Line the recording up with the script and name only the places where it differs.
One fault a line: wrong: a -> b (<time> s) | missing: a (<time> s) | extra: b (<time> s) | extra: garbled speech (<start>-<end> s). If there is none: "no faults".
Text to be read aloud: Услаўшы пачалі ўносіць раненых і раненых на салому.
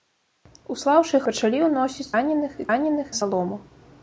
no faults